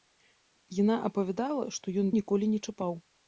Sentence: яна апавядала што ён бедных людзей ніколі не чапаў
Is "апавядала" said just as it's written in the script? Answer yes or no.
yes